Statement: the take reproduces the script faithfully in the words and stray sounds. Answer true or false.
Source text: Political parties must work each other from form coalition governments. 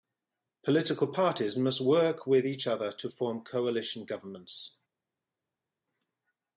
false